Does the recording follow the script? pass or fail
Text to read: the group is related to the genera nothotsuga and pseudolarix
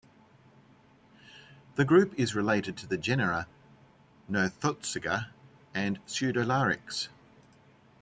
pass